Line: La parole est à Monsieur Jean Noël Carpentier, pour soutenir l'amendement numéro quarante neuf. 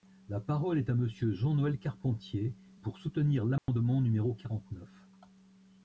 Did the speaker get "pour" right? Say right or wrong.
right